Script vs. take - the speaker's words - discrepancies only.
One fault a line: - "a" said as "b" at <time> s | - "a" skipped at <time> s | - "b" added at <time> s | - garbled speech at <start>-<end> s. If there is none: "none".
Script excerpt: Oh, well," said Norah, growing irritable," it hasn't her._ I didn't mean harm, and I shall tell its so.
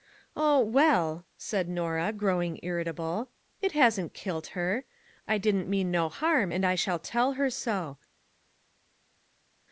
- "kilt" added at 4.1 s
- "no" added at 5.9 s
- "its" said as "her" at 7.3 s